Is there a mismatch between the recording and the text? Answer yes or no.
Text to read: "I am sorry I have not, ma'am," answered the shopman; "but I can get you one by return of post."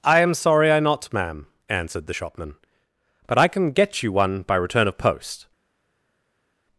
yes